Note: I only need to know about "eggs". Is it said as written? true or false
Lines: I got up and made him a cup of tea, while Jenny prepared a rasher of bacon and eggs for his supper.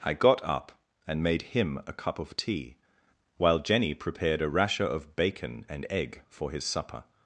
false